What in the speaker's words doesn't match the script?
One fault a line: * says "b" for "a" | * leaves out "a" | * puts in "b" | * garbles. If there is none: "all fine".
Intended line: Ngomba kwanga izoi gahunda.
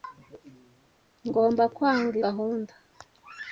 * leaves out "izoi"